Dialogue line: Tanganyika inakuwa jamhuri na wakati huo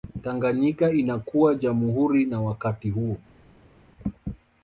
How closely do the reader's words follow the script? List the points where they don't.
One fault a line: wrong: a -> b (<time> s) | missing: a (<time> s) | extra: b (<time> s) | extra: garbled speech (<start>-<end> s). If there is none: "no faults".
no faults